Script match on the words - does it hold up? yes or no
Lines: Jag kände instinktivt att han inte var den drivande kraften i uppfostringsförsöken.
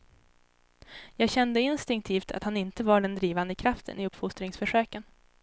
yes